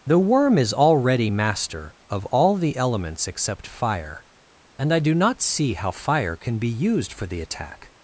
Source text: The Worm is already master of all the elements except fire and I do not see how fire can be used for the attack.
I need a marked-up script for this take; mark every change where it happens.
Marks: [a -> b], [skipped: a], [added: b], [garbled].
The Worm is already master of all the elements except fire and I do not see how fire can be used for the attack.